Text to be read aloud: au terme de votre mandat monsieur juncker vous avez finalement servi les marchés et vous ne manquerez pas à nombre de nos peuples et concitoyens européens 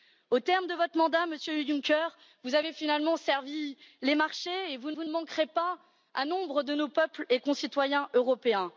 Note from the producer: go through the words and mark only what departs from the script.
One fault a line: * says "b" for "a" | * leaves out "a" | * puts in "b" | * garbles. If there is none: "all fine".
* puts in "vous"